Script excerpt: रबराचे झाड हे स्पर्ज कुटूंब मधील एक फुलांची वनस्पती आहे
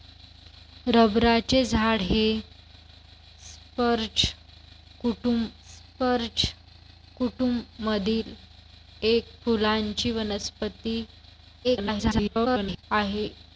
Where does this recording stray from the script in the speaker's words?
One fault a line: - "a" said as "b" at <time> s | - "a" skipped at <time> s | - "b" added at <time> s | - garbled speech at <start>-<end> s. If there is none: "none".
- "स्पर्ज कुटूंब" added at 5.6 s
- garbled speech at 11.6-12.8 s